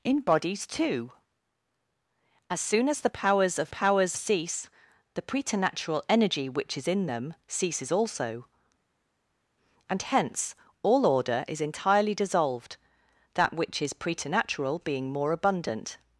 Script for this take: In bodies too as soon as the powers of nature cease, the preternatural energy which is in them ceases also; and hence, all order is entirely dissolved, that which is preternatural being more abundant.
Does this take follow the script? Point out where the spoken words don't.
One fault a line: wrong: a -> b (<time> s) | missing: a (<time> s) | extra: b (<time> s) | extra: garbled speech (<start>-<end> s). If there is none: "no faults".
wrong: nature -> powers (3.7 s)